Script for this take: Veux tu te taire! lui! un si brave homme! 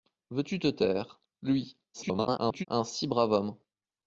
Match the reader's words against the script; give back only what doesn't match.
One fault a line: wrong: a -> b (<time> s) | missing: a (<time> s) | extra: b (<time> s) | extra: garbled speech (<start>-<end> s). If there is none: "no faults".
extra: garbled speech (1.9-2.7 s)